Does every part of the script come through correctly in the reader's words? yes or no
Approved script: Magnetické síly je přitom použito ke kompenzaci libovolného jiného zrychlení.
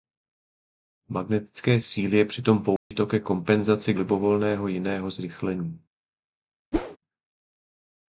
yes